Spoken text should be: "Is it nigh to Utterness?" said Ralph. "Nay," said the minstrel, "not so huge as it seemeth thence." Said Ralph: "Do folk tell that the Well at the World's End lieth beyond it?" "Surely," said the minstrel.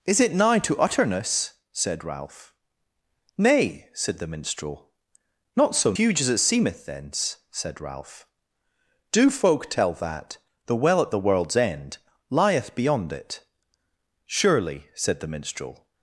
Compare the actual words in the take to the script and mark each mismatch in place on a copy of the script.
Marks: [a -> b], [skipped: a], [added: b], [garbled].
"Is it nigh to Utterness?" said Ralph. "Nay," said the minstrel, "not so huge as it seemeth thence." Said Ralph: "Do folk tell that the Well at the World's End lieth beyond it?" "Surely," said the minstrel.